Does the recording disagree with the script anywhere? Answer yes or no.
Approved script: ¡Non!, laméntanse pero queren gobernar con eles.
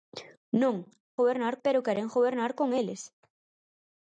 yes